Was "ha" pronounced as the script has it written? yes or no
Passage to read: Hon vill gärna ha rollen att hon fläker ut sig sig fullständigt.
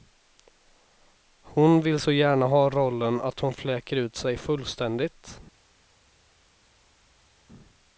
yes